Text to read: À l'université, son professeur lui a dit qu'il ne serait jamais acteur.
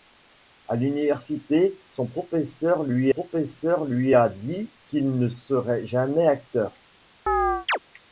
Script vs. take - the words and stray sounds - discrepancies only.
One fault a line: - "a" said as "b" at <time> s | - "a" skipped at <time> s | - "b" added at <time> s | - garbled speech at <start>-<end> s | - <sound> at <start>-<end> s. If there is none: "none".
- "professeur lui" added at 3.1 s
- chirp at 7.3-7.8 s